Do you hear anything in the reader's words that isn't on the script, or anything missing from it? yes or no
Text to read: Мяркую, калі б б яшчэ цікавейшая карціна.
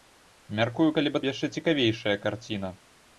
no